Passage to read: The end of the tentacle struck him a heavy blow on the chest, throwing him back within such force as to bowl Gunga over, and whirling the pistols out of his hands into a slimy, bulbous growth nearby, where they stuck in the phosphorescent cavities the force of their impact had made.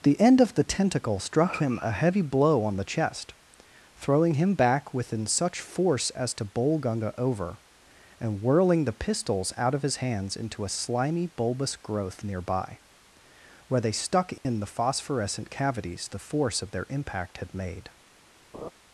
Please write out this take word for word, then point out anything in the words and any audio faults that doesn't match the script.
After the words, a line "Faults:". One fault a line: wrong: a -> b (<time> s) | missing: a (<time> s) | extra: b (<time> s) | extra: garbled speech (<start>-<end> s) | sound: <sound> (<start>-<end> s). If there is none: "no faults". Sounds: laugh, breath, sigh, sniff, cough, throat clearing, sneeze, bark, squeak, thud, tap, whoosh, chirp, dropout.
The end of the tentacle struck him a heavy blow on the chest, throwing him back within such force as to bowl Gunga over, and whirling the pistols out of his hands into a slimy, bulbous growth nearby, where they stuck in the phosphorescent cavities the force of their impact had made.
Faults:
sound: dropout (14.4-14.5 s)
sound: laugh (18.5-18.7 s)